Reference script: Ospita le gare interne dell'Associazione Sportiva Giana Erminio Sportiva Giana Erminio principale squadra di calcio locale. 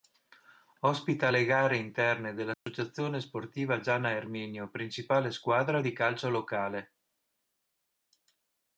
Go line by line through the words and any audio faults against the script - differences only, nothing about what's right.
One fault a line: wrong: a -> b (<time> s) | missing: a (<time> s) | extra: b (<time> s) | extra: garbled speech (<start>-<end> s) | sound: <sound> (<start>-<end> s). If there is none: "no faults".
sound: dropout (2.5-2.7 s)
missing: Sportiva Giana Erminio (4.7 s)